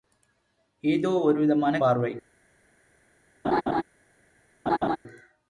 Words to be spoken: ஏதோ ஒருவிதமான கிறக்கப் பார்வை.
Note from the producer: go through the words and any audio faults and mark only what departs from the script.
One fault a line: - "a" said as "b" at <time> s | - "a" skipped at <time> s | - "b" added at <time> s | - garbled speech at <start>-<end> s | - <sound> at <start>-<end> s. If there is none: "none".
- "கிறக்கப்" skipped at 1.8 s
- laugh at 3.4-3.8 s
- laugh at 4.7-5.0 s